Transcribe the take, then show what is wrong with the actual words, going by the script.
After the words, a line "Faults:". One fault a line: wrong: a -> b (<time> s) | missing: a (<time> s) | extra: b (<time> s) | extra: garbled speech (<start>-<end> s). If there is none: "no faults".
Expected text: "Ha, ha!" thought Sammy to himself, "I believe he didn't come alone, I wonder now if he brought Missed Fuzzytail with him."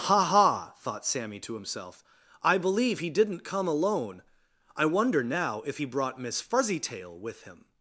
"Ha, ha!" thought Sammy to himself, "I believe he didn't come alone, I wonder now if he brought Miss Fuzzytail with him."
Faults:
wrong: Missed -> Miss (6.2 s)